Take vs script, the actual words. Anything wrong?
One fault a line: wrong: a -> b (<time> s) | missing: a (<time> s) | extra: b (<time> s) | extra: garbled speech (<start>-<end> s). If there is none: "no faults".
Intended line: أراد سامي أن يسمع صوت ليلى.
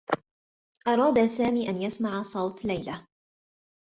no faults